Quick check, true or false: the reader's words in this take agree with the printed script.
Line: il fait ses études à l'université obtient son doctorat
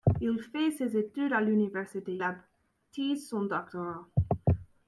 true